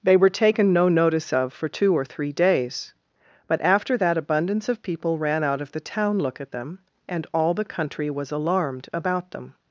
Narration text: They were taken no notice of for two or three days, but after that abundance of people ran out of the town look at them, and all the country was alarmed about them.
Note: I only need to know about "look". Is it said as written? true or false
true